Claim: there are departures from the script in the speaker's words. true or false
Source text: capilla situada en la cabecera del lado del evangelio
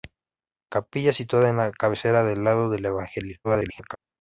true